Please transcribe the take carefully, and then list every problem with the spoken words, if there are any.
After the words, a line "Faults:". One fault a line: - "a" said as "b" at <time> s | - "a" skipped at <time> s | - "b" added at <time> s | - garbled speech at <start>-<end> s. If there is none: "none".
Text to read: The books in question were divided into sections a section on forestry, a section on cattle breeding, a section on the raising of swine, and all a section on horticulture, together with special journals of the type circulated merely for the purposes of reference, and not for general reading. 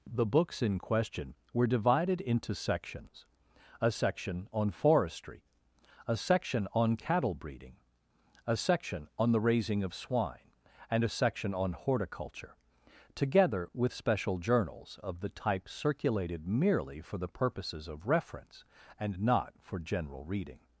The books in question were divided into sections a section on forestry, a section on cattle breeding, a section on the raising of swine, and a section on horticulture, together with special journals of the type circulated merely for the purposes of reference, and not for general reading.
Faults:
- "all" skipped at 11.0 s